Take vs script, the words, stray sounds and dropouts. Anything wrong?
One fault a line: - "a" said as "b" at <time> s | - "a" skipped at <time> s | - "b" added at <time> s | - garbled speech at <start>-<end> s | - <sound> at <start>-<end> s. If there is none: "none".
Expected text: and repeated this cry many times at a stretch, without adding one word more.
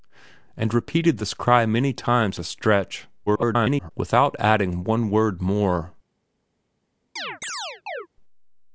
- "at" skipped at 2.4 s
- garbled speech at 3.3-3.9 s
- chirp at 7.2-8.1 s